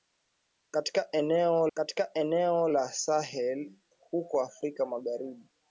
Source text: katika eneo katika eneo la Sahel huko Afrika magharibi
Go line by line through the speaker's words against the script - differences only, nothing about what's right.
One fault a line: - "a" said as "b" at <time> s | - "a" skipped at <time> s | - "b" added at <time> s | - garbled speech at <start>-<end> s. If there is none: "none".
none